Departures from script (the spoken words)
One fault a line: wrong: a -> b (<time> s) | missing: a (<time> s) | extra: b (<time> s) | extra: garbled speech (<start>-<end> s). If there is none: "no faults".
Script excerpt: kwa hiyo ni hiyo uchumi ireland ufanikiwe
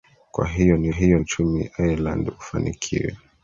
no faults